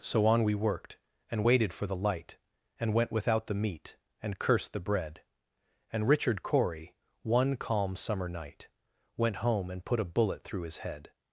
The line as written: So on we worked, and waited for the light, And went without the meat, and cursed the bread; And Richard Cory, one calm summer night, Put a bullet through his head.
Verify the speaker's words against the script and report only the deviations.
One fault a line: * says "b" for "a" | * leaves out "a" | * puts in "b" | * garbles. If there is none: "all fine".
* puts in "Went home and"